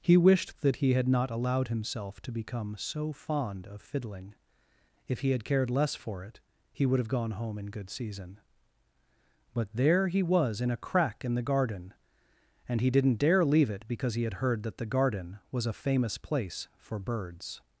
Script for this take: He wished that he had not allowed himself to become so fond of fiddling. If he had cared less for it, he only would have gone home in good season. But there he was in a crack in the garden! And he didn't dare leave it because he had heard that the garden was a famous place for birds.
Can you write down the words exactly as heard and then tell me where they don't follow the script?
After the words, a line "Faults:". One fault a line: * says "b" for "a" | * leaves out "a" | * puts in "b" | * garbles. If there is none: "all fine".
He wished that he had not allowed himself to become so fond of fiddling. If he had cared less for it, he would have gone home in good season. But there he was in a crack in the garden! And he didn't dare leave it because he had heard that the garden was a famous place for birds.
Faults:
* leaves out "only"